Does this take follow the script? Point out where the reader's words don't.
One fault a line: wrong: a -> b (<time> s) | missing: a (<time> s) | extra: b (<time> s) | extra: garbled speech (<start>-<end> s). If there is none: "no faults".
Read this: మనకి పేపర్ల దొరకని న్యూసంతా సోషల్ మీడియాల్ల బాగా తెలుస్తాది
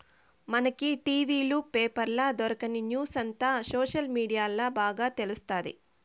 extra: టి.వీ లు (1.0 s)